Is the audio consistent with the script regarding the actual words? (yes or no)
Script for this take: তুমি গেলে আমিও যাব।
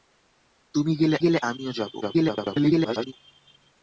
no